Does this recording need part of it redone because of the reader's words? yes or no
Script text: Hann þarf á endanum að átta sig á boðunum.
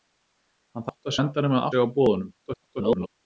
yes